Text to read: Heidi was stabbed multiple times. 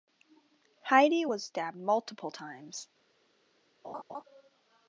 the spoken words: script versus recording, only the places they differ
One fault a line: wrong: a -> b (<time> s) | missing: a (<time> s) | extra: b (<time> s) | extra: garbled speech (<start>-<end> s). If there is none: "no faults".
no faults